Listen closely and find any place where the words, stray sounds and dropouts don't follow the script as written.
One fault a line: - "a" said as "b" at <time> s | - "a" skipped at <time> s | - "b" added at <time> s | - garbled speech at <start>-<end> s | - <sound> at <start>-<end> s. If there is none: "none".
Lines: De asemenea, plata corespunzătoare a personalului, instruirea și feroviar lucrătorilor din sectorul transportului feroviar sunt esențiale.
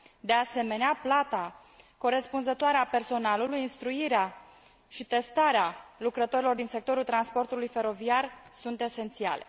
- "feroviar" said as "testarea" at 5.1 s